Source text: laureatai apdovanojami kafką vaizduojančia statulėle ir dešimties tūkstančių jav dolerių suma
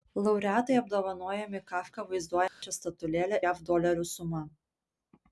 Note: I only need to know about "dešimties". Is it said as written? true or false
false